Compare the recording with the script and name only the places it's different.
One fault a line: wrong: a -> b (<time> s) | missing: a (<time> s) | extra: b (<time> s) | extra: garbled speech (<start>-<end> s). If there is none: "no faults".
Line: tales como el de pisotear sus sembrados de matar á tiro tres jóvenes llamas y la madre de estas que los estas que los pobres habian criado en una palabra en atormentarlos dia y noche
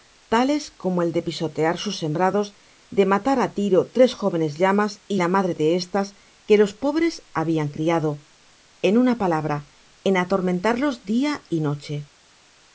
missing: estas que los (6.7 s)